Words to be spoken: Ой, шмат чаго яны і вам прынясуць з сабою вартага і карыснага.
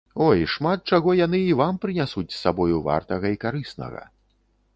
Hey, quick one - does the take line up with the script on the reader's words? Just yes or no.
yes